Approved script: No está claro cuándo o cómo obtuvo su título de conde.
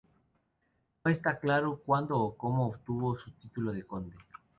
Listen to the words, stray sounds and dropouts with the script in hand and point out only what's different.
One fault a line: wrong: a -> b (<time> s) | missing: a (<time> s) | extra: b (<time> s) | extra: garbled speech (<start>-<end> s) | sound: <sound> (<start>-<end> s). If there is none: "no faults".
no faults